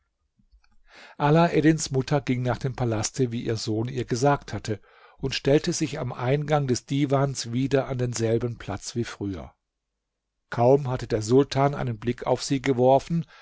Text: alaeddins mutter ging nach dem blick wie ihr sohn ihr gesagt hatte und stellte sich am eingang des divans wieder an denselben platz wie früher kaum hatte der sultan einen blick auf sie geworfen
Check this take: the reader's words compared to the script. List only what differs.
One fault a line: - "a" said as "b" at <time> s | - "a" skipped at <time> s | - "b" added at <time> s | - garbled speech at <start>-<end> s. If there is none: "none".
- "blick" said as "palaste" at 2.8 s